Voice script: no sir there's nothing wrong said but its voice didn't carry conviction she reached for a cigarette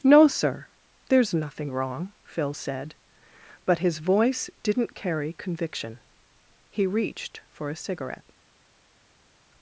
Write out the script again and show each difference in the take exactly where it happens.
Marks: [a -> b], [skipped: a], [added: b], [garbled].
no sir there's nothing wrong [added: phil] said but [its -> his] voice didn't carry conviction [she -> he] reached for a cigarette